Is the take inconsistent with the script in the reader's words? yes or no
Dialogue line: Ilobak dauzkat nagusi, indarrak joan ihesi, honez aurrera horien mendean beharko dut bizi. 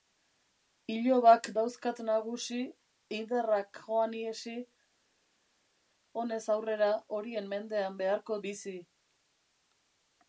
yes